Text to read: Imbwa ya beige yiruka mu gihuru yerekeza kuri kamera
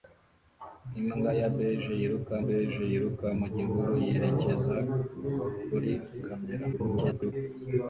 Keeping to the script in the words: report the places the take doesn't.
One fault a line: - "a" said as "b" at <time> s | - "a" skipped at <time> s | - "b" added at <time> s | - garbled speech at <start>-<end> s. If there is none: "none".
- "beige yiruka" added at 2.4 s
- garbled speech at 6.7-7.3 s